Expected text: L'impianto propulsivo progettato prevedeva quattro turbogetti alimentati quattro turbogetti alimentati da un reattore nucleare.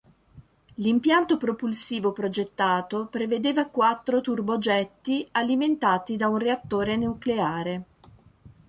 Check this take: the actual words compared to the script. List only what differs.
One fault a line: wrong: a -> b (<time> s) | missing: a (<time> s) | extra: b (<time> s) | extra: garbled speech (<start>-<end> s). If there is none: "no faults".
missing: quattro turbogetti alimentati (6.1 s)